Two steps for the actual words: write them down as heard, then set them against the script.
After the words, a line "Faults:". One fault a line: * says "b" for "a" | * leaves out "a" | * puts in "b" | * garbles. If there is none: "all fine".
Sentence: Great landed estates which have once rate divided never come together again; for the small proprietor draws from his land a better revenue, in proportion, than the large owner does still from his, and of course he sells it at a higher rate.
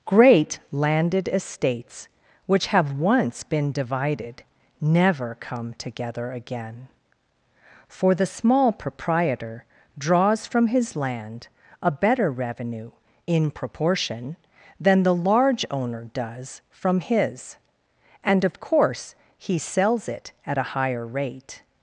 Great landed estates which have once been divided never come together again; for the small proprietor draws from his land a better revenue, in proportion, than the large owner does from his, and of course he sells it at a higher rate.
Faults:
* says "been" for "rate"
* leaves out "still"